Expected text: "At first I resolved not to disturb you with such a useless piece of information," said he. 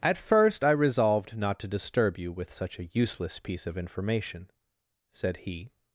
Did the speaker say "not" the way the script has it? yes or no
yes